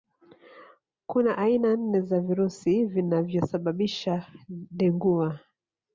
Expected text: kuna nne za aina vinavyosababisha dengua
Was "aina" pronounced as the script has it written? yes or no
no